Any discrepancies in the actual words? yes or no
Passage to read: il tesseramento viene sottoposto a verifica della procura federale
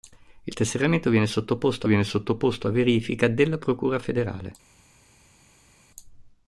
yes